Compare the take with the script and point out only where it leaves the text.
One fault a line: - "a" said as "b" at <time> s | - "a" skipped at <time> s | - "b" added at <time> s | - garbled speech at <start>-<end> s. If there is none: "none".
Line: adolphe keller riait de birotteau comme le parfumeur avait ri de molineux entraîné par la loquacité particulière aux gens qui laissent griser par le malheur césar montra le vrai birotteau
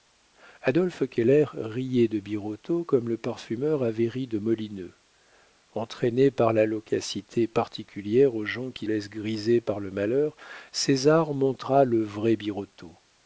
none